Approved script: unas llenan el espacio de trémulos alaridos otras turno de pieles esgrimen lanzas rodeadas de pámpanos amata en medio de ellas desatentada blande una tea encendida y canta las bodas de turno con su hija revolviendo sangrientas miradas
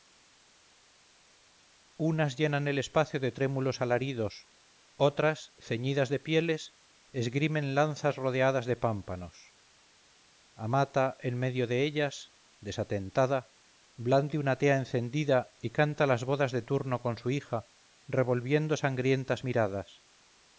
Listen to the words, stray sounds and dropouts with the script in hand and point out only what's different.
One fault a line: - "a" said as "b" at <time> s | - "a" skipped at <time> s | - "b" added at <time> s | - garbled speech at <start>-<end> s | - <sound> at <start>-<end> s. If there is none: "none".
- "turno" said as "ceñidas" at 5.6 s